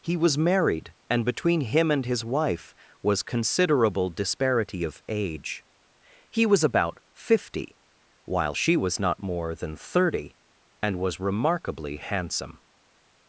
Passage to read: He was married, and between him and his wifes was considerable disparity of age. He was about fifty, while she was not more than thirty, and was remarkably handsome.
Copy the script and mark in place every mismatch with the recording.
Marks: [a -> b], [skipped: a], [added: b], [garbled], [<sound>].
He was married, and between him and his [wifes -> wife] was considerable disparity of age. He was about fifty, while she was not more than thirty, and was remarkably handsome.